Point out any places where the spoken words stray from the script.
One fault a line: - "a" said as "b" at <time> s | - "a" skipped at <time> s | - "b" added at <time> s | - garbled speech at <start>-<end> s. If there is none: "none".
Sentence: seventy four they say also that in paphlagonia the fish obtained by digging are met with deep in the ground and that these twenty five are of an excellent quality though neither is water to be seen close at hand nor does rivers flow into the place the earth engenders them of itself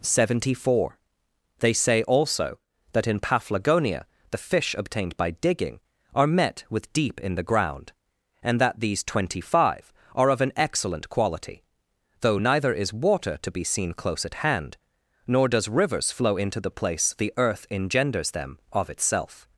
none